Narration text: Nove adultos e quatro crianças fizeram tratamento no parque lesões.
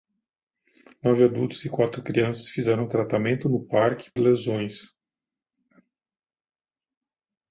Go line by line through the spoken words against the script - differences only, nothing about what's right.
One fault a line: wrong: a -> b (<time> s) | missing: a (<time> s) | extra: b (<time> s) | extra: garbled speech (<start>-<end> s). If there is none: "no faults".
no faults